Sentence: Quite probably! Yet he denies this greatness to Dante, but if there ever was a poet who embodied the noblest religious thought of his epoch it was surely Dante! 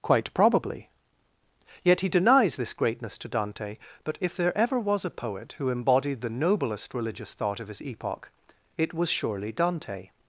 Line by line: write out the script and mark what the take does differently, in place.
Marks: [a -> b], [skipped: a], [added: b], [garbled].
Quite probably! Yet he denies this greatness to Dante, but if there ever was a poet who embodied the noblest religious thought of his epoch it was surely Dante!